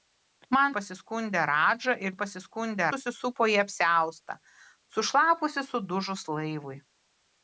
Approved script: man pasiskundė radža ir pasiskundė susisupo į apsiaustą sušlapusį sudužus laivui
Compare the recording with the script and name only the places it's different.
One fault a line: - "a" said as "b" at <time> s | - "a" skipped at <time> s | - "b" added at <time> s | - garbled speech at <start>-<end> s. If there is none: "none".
none